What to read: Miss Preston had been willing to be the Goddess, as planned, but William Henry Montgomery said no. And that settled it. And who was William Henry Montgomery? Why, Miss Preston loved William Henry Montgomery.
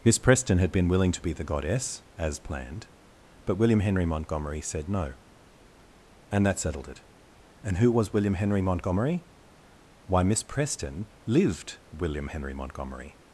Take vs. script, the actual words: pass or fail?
fail